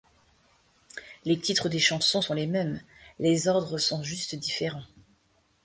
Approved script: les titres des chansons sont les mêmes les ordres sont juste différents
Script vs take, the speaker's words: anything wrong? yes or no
no